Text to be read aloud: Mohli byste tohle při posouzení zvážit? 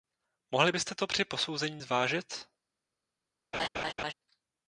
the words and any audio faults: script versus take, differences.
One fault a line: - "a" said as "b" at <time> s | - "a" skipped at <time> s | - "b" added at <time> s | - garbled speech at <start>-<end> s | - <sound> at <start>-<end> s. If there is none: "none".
- "tohle" said as "to" at 1.0 s
- laugh at 3.5-4.1 s